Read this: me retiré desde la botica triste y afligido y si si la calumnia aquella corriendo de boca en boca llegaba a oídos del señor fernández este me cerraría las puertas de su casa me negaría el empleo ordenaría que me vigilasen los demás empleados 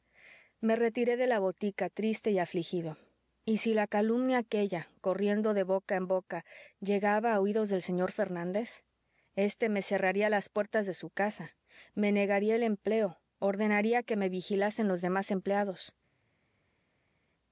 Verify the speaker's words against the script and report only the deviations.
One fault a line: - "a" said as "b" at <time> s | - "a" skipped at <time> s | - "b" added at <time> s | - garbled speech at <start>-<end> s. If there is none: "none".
- "desde" said as "de" at 1.1 s
- "si" skipped at 3.7 s